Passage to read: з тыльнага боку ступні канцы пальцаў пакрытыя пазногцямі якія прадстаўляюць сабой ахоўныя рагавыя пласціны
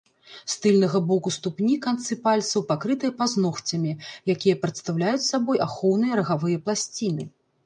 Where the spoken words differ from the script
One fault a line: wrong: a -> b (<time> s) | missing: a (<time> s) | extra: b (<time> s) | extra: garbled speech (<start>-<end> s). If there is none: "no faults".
no faults